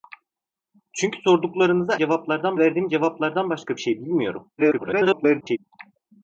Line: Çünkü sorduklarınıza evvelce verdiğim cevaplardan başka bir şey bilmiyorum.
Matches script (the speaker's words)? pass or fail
fail